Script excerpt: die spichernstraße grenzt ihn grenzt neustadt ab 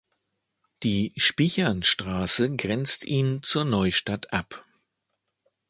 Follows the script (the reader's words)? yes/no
no